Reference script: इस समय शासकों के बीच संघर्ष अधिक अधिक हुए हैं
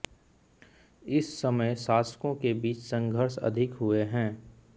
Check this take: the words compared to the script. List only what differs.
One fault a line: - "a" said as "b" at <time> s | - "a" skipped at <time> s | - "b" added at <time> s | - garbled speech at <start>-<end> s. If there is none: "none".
- "अधिक" skipped at 3.7 s